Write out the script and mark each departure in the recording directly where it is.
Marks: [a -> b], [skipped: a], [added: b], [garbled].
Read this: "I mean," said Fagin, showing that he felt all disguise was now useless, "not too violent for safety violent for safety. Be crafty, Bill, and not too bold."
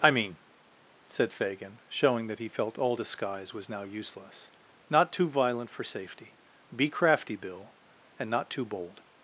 "I mean," said Fagin, showing that he felt all disguise was now useless, "not too violent for safety [skipped: violent for safety.] Be crafty, Bill, and not too bold."